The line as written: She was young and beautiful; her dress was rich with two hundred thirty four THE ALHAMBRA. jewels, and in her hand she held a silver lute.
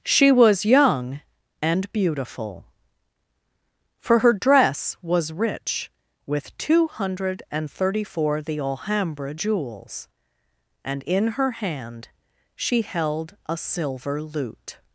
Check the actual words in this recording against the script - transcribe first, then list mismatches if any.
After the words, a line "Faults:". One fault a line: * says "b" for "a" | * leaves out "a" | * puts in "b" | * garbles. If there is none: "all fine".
She was young and beautiful; for her dress was rich with two hundred and thirty four THE ALHAMBRA. jewels, and in her hand she held a silver lute.
Faults:
* puts in "for"
* puts in "and"